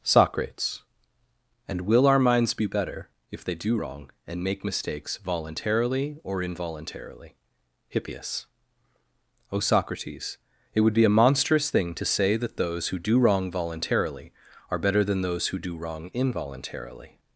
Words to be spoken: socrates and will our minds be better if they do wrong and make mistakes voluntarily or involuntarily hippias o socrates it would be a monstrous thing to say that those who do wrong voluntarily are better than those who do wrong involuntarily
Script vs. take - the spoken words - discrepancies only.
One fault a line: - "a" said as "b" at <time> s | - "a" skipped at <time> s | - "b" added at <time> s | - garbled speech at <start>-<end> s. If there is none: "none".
none